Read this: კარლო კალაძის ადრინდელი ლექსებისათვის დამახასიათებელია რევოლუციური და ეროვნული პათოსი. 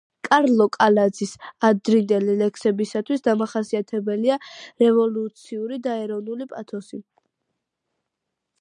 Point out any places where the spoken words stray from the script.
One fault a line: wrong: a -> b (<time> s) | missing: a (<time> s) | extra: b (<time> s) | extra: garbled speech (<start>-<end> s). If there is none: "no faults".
no faults